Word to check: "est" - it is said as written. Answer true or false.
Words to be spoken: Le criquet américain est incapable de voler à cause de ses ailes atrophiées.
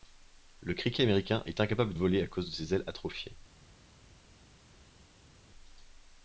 true